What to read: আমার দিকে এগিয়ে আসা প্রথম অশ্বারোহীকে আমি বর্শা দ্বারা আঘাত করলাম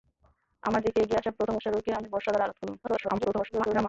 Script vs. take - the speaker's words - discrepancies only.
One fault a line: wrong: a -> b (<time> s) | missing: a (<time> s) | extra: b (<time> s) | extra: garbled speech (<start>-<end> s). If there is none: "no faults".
extra: garbled speech (2.8-3.9 s)